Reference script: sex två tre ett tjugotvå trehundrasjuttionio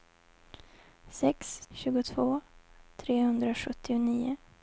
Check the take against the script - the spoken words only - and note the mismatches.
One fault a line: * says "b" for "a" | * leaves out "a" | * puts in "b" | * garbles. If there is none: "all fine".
* leaves out "två tre ett"